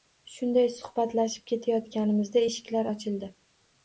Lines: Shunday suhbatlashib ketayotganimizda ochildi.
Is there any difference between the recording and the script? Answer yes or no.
yes